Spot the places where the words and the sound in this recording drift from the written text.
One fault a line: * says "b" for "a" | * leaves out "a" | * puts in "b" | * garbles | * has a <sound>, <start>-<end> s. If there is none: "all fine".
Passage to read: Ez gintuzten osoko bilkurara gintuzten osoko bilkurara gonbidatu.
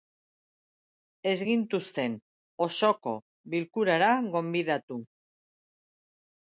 * leaves out "gintuzten osoko bilkurara"